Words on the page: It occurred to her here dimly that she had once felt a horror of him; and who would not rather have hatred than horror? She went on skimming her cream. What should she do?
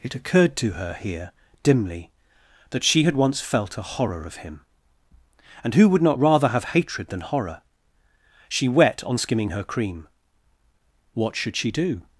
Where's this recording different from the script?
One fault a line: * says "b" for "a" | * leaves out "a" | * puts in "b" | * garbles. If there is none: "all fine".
* says "wet" for "went"